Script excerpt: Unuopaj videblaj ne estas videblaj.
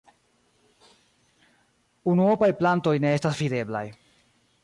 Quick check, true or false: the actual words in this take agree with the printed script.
false